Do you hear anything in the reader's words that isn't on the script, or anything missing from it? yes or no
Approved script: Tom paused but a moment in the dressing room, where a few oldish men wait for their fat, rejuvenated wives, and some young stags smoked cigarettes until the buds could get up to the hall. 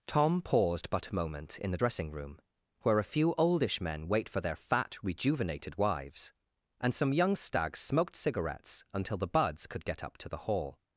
no